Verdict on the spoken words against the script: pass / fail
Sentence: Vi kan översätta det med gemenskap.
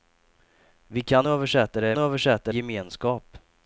fail